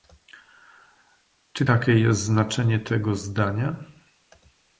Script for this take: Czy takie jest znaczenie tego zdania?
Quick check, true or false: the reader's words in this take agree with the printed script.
true